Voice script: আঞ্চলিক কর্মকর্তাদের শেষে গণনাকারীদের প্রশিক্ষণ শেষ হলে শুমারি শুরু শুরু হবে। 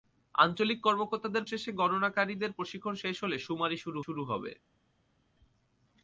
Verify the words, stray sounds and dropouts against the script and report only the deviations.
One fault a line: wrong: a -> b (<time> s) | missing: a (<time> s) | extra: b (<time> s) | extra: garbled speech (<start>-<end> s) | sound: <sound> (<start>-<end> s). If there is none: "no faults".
no faults